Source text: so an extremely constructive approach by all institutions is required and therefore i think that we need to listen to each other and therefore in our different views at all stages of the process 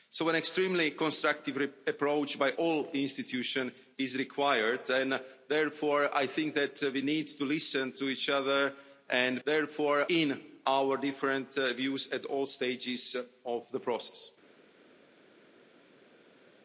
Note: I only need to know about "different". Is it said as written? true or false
true